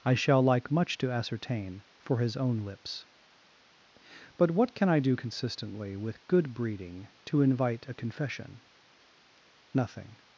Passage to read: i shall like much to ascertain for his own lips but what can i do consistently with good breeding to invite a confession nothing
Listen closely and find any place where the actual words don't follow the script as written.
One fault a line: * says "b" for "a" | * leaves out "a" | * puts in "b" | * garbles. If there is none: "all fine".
all fine